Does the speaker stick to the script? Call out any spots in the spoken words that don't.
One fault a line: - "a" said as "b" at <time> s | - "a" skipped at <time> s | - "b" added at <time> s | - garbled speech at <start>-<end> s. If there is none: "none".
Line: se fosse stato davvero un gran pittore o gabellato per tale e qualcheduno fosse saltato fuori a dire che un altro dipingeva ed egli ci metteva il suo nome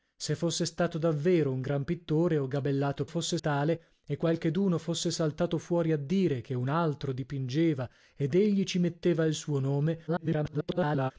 - "per" said as "fosse" at 3.0 s
- garbled speech at 10.1-11.1 s